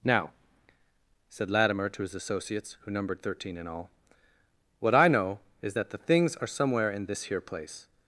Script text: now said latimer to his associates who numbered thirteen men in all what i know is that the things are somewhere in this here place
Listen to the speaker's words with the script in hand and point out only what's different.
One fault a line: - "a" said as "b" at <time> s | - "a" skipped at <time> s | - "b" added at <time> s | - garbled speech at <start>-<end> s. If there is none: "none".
- "men" skipped at 3.5 s